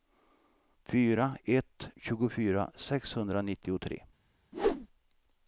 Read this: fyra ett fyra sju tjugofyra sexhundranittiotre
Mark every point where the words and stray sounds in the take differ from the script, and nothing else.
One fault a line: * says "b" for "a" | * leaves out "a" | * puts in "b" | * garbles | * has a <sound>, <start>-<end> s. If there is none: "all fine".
* leaves out "fyra sju"
* has a whoosh, 4.5-4.9 s